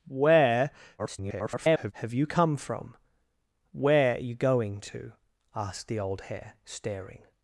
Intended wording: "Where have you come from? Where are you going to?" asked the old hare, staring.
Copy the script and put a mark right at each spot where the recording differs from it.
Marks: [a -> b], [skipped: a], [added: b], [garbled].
"Where [garbled] have you come from? Where are you going to?" asked the old hare, staring.